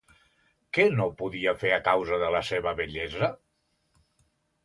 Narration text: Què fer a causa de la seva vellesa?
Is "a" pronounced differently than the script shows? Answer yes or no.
no